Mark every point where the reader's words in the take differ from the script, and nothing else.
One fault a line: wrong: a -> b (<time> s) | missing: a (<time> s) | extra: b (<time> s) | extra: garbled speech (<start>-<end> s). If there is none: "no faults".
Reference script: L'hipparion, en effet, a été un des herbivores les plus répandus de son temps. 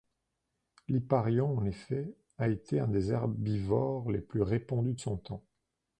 no faults